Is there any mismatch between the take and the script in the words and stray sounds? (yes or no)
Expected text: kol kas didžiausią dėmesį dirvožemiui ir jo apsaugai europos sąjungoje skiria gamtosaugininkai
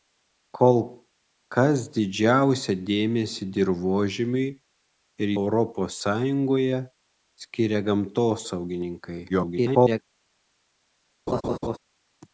yes